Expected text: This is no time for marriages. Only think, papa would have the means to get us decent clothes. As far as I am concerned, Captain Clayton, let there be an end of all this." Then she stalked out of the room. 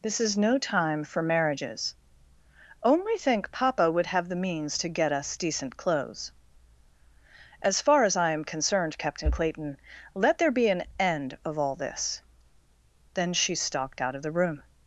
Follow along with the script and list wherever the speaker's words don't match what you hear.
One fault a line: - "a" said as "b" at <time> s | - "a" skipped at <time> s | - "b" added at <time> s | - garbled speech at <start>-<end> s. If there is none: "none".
none